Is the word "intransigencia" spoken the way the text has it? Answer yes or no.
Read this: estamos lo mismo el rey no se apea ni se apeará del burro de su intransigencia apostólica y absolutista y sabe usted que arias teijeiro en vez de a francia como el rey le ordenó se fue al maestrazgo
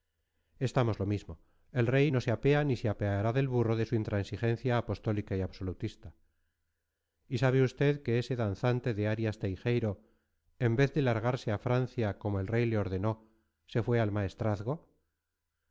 yes